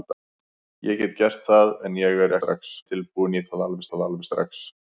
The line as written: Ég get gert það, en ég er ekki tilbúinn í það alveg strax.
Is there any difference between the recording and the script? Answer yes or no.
yes